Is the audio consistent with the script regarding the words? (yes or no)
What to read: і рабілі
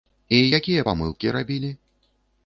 no